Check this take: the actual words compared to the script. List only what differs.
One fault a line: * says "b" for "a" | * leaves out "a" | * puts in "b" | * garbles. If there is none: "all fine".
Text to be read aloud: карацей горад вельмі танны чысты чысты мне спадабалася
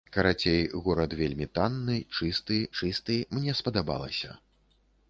all fine